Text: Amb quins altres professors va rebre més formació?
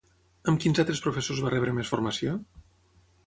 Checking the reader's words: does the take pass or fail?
pass